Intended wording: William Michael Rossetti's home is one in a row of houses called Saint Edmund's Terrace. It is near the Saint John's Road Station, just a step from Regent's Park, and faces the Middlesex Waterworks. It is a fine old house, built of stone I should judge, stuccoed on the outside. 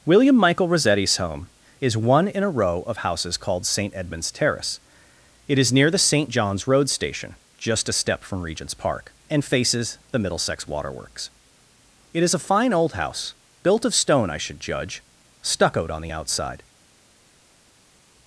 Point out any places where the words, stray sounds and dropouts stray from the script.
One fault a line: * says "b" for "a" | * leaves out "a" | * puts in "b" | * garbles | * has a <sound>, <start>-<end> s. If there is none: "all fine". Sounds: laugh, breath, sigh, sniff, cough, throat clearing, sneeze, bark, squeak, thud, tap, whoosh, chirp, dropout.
all fine